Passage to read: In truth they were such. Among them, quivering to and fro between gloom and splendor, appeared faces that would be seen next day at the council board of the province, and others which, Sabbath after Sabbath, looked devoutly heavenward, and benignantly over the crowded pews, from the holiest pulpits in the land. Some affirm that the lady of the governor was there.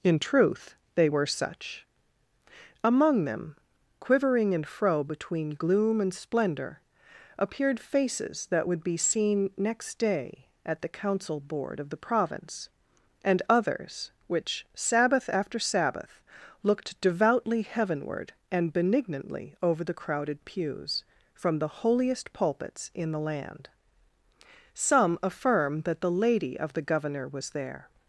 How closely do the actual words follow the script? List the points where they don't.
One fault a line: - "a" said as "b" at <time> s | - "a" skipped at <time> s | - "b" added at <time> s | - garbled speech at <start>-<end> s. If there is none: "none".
- "to" skipped at 4.5 s